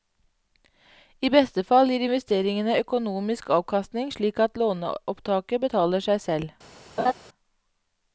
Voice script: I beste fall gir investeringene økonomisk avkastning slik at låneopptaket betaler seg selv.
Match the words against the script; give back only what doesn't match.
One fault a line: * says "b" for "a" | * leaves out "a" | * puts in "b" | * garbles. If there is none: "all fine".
all fine